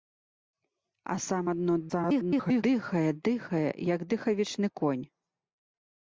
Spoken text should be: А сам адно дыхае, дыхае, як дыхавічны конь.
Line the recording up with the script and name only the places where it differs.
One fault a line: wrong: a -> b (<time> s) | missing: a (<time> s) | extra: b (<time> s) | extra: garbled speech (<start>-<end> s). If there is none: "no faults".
extra: garbled speech (1.9-2.6 s)